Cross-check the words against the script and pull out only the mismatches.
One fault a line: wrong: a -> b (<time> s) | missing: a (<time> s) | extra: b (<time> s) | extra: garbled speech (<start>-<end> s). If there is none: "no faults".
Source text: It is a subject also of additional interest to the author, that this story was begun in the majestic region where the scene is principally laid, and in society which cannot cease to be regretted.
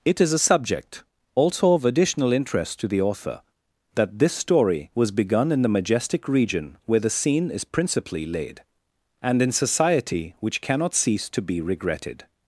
no faults